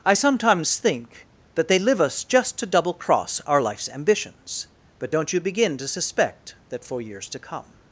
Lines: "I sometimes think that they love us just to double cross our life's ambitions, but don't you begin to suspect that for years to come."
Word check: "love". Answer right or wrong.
wrong